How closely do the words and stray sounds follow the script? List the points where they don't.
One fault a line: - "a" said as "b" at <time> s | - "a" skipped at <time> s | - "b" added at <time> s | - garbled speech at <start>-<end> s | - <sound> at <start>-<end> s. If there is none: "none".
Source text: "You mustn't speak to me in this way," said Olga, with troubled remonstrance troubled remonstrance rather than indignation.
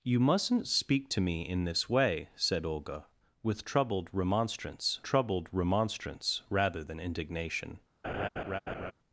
- laugh at 8.0-8.9 s